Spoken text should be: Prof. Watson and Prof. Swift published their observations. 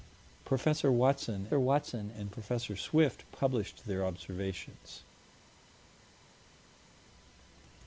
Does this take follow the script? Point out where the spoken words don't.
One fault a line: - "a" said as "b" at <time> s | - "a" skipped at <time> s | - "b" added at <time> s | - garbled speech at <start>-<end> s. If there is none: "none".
- "watson" added at 1.5 s